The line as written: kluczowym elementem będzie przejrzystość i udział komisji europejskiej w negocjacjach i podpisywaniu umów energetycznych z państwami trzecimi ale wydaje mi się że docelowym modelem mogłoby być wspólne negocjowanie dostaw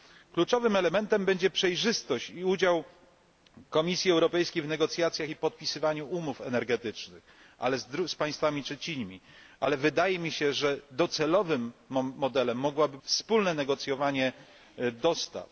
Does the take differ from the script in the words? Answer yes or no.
yes